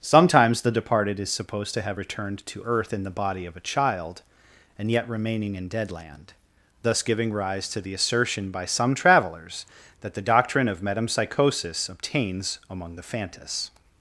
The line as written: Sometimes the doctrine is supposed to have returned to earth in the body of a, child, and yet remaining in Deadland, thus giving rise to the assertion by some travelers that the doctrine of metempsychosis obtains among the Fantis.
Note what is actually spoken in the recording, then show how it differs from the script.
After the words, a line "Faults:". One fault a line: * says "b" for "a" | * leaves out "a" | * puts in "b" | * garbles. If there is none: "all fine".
Sometimes the departed is supposed to have returned to earth in the body of a, child, and yet remaining in Deadland, thus giving rise to the assertion by some travelers that the doctrine of metempsychosis obtains among the Fantis.
Faults:
* says "departed" for "doctrine"